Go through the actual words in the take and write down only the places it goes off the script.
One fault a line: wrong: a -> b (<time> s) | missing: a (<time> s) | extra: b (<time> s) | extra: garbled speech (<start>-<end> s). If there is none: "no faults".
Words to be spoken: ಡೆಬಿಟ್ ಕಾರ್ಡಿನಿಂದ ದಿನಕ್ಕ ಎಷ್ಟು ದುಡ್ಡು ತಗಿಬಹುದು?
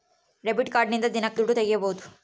missing: ಎಷ್ಟು (1.4 s)